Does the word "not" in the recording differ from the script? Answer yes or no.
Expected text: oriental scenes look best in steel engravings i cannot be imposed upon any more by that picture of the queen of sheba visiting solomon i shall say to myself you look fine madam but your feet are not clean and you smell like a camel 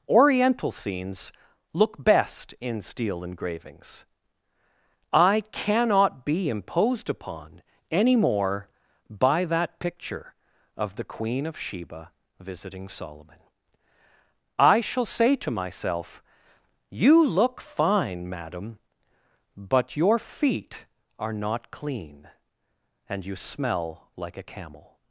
no